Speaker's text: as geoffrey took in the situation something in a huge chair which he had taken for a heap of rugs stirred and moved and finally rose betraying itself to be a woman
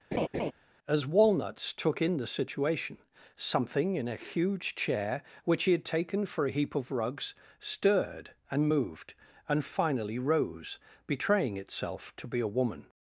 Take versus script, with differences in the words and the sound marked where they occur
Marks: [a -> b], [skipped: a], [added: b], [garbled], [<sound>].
[laugh] as [geoffrey -> walnuts] took in the situation something in a huge chair which he had taken for a heap of rugs stirred and moved and finally rose betraying itself to be a woman